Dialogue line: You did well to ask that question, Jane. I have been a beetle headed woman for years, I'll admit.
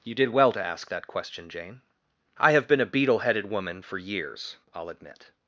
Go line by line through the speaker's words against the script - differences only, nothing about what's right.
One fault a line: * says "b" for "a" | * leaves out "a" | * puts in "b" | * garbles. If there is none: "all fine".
all fine